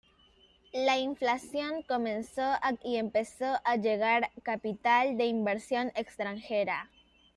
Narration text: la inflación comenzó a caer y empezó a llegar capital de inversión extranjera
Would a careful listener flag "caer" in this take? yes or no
yes